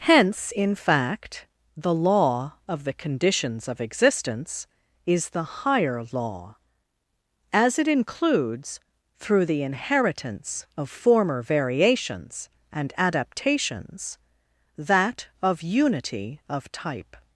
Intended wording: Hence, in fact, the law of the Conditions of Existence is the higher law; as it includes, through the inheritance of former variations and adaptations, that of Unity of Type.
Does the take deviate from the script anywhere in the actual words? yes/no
no